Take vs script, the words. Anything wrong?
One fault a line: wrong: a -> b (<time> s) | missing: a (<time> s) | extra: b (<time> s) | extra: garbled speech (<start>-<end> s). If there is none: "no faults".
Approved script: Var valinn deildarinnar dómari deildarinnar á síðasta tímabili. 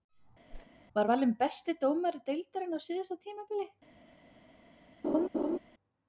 wrong: deildarinnar -> besti (1.4 s)